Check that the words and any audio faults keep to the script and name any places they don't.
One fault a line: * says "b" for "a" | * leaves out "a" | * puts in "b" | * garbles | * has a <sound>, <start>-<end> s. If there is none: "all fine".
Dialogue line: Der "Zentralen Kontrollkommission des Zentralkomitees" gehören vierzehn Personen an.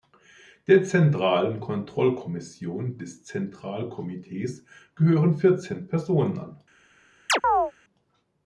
* has a chirp, 7.3-7.7 s